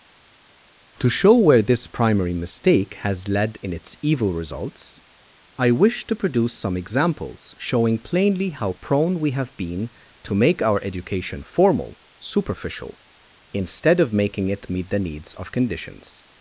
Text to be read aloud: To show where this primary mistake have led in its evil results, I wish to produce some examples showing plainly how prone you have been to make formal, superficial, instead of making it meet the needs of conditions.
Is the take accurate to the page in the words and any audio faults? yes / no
no